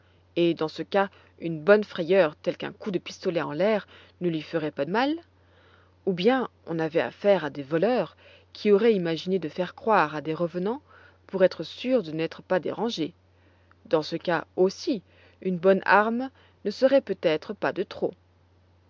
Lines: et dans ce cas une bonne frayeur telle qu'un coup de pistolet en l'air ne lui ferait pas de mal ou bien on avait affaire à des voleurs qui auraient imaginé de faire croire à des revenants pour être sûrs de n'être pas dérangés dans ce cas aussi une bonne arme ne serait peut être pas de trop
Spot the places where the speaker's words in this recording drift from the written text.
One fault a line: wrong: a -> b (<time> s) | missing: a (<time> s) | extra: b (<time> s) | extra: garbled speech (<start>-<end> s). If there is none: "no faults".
missing: de (4.8 s)